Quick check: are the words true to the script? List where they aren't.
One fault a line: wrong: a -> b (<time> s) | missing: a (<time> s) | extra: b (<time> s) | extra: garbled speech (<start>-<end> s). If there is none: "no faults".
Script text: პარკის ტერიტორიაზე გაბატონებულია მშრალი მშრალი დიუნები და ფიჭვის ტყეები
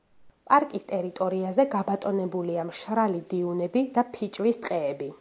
missing: მშრალი (3.2 s)